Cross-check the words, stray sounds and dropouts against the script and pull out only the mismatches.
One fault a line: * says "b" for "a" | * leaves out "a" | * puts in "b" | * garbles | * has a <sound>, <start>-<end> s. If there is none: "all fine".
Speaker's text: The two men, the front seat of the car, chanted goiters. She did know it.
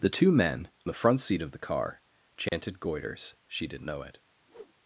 * has a dropout, 2.5-2.5 s
* has a whoosh, 4.5-4.7 s